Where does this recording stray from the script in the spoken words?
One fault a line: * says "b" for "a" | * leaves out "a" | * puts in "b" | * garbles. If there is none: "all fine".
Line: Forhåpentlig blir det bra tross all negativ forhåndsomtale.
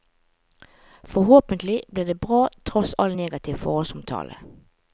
all fine